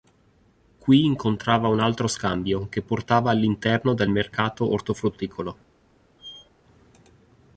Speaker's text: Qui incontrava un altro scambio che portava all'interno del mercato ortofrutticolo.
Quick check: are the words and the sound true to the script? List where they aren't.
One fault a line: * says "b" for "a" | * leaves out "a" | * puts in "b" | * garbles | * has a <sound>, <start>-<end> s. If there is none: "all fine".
* has a squeak, 6.2-6.5 s